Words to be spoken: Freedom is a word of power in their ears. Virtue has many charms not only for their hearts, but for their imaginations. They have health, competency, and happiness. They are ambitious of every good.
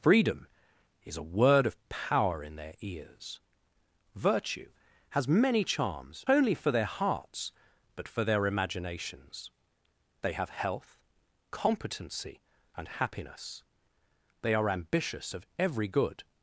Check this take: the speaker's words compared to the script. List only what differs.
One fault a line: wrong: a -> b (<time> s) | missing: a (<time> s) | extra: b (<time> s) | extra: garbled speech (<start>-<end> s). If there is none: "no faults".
missing: not (6.2 s)